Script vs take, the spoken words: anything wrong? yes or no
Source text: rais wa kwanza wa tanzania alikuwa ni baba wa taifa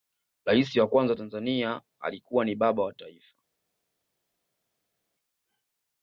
no